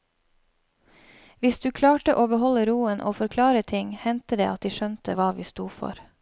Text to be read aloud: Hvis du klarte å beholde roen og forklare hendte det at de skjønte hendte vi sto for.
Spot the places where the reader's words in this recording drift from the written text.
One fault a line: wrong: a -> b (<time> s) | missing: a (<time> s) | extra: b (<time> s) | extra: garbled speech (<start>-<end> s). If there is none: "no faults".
extra: ting (3.6 s)
wrong: hendte -> hva (5.2 s)